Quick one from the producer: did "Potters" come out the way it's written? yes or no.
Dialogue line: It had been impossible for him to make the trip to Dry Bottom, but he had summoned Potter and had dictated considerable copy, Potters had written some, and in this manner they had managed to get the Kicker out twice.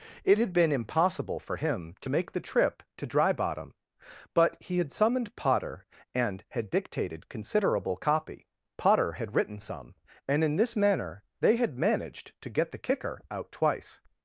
no